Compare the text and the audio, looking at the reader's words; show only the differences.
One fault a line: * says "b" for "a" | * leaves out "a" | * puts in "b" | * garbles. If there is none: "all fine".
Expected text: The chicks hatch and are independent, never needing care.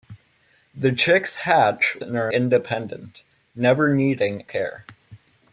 all fine